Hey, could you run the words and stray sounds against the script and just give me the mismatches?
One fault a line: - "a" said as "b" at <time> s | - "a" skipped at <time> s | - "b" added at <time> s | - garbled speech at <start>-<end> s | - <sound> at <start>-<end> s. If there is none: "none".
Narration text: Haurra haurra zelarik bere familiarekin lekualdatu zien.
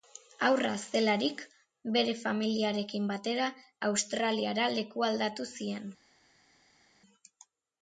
- "haurra" skipped at 0.7 s
- "batera Australiara" added at 3.1 s